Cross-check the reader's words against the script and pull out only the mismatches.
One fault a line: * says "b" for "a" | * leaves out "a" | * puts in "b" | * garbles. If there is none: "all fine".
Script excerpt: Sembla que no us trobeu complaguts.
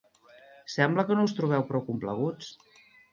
* puts in "prou"